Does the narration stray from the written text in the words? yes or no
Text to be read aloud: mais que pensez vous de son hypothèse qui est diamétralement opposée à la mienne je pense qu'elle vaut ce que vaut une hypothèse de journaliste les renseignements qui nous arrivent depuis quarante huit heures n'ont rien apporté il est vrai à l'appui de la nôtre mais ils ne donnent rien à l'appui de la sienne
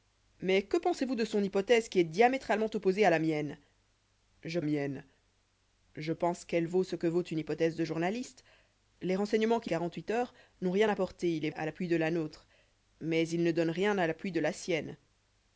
yes